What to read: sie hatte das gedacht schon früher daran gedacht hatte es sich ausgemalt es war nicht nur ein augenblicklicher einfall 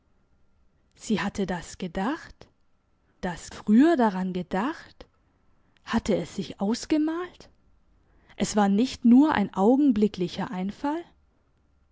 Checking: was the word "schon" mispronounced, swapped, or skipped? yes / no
yes